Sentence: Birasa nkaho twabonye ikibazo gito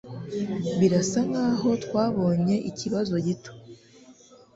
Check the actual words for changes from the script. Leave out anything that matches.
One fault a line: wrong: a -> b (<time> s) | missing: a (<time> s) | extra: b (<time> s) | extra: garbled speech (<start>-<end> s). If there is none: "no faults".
no faults